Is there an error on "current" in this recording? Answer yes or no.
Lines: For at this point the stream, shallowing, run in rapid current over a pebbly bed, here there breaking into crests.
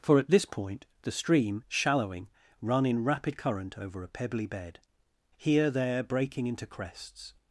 no